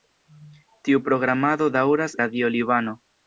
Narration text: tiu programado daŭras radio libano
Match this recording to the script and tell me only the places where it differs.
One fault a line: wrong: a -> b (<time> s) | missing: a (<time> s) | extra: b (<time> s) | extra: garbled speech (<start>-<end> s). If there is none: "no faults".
no faults